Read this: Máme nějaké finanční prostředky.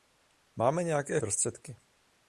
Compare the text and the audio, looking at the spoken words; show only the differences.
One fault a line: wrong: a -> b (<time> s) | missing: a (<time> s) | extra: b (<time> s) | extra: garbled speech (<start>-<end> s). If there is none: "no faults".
missing: finanční (1.2 s)